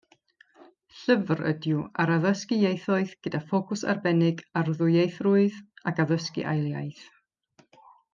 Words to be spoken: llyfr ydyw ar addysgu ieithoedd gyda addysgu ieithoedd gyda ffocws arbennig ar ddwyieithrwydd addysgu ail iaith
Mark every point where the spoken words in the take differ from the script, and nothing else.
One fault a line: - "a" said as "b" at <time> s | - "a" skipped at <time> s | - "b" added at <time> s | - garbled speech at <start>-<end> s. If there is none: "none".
- "addysgu ieithoedd gyda" skipped at 3.4 s
- "ac" added at 5.9 s